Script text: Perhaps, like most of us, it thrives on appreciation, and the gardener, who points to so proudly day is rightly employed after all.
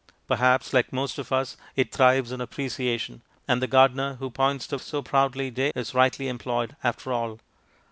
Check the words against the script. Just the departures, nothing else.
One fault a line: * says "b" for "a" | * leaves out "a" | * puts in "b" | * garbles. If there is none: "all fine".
all fine